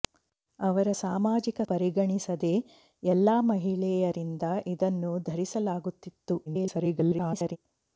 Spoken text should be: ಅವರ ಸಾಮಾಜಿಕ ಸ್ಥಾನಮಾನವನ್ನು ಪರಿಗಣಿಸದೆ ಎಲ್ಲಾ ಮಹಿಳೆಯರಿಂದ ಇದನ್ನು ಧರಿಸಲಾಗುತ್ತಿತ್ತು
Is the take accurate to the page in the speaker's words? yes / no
no